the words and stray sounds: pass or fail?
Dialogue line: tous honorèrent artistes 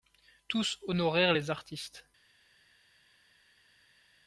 fail